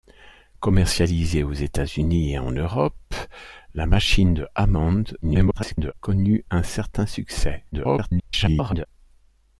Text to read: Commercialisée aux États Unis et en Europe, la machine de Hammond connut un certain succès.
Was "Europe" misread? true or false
false